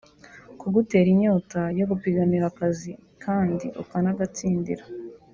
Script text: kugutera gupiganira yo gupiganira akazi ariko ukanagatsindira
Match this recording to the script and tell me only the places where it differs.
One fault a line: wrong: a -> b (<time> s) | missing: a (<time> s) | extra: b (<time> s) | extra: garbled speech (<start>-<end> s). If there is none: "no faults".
wrong: gupiganira -> inyota (1.1 s)
wrong: ariko -> kandi (3.2 s)